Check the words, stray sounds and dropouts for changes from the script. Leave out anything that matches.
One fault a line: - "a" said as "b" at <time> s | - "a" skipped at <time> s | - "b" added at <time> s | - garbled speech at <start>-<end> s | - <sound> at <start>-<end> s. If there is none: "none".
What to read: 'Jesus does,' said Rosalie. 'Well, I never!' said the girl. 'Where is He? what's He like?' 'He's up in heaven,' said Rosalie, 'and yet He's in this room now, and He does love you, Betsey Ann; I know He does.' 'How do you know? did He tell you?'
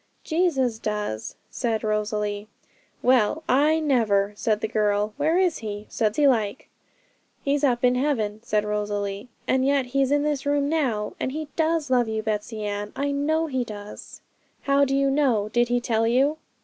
- "what's" said as "said" at 5.9 s